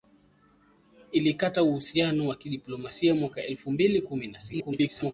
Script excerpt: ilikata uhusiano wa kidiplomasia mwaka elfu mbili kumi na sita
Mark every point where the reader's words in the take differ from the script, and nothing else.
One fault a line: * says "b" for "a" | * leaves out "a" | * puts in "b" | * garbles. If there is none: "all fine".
* garbles